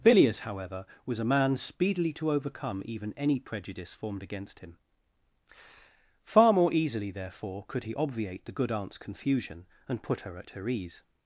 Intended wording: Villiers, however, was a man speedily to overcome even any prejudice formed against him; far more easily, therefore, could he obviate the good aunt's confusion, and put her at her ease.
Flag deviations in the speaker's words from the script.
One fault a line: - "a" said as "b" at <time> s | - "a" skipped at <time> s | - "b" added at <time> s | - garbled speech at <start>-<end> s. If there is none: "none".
none